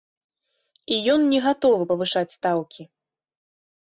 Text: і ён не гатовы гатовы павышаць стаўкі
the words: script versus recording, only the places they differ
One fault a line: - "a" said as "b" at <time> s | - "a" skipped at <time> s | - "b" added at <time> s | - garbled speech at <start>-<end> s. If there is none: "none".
- "гатовы" skipped at 1.8 s